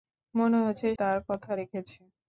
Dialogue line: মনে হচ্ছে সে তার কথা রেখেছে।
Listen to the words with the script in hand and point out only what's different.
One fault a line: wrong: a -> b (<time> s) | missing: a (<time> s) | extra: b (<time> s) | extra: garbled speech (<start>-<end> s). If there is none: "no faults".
missing: সে (0.9 s)